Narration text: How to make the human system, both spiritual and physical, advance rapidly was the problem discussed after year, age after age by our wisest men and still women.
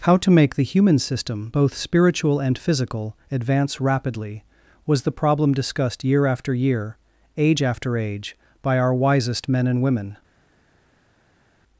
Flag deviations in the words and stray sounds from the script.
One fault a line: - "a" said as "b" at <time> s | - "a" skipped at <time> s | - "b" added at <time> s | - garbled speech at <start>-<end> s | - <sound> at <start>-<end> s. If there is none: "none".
- "year" added at 6.0 s
- "still" skipped at 9.8 s